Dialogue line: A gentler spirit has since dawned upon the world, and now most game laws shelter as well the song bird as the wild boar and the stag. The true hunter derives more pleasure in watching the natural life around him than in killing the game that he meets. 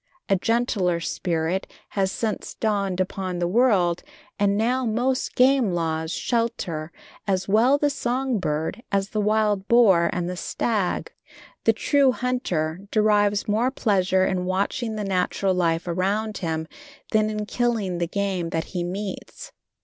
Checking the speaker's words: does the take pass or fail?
pass